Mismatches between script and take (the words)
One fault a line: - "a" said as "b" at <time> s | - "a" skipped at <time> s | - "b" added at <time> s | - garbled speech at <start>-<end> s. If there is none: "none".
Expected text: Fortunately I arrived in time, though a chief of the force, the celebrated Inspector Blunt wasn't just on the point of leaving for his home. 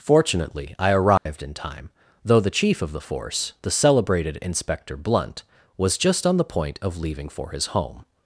- "a" said as "the" at 2.4 s
- "wasn't" said as "was" at 5.8 s